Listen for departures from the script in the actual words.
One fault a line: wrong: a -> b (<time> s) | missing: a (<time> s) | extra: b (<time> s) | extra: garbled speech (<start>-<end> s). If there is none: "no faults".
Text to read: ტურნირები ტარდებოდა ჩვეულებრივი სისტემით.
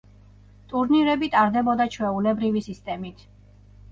no faults